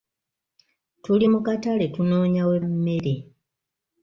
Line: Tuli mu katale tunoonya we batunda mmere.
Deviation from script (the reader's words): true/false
true